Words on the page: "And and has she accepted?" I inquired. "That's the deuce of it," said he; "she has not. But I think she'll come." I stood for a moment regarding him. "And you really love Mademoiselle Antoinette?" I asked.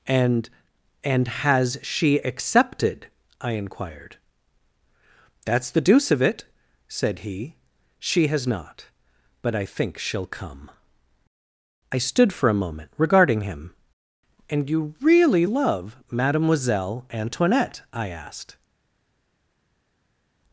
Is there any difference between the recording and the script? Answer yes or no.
no